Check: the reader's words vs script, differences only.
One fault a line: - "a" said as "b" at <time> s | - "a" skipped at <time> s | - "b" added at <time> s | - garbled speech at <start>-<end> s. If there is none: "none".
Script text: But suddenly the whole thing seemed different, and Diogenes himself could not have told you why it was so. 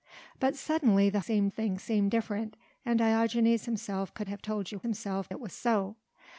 - "whole" said as "seemed" at 1.2 s
- "not" skipped at 4.3 s
- "why" said as "himself" at 4.8 s